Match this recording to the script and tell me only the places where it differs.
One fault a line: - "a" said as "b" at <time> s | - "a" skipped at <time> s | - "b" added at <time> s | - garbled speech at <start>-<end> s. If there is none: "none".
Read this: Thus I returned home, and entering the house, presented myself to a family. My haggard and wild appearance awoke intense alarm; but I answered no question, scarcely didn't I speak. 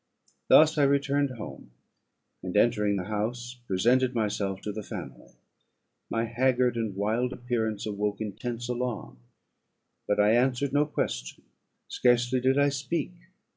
- "a" said as "the" at 4.7 s
- "didn't" said as "did" at 12.4 s